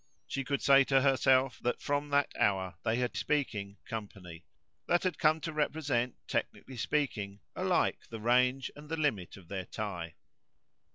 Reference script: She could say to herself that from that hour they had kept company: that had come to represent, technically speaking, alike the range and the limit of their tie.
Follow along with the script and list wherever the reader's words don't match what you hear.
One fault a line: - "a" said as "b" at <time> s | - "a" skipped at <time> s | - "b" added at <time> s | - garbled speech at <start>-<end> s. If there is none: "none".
- "kept" said as "speaking" at 3.1 s